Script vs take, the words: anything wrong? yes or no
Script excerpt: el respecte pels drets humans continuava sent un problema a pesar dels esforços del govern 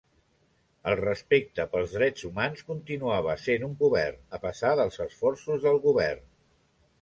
yes